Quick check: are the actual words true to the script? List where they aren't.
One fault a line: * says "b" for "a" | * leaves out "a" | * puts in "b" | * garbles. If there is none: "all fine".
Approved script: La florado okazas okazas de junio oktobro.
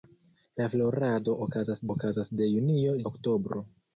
all fine